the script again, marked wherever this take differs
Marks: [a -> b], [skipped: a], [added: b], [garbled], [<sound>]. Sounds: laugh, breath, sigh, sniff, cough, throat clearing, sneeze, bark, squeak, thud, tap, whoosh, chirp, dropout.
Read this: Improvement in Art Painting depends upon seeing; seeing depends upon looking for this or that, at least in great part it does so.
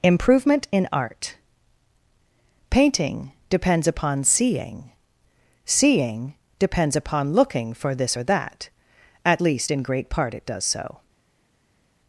Improvement in Art Painting depends upon seeing; seeing depends upon looking for this or that, at least in great part it does so.